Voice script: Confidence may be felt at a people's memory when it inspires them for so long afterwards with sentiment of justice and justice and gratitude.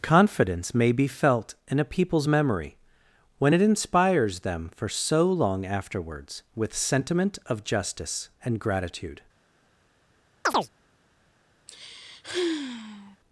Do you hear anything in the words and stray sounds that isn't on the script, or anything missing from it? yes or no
yes